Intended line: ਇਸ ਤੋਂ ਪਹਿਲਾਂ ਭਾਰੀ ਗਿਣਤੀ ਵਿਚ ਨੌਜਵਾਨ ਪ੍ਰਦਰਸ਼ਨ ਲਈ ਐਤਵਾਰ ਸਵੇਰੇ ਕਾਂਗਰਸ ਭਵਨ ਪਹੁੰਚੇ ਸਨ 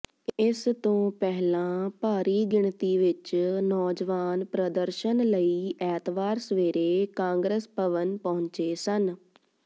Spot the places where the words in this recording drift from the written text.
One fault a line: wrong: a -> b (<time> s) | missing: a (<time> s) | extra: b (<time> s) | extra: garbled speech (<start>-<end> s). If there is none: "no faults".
no faults